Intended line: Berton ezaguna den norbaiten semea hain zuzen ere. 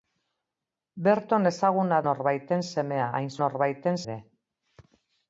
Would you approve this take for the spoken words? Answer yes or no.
no